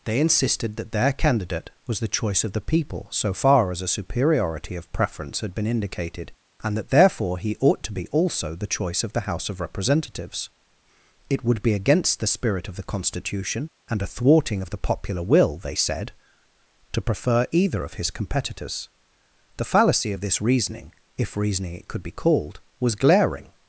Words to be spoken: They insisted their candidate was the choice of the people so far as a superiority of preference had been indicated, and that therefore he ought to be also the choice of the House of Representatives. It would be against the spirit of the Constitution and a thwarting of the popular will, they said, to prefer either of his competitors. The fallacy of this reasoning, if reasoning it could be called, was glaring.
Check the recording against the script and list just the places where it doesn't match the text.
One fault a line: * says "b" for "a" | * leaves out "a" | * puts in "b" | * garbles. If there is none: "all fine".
* puts in "that"